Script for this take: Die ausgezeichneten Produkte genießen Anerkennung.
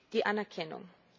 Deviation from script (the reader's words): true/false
true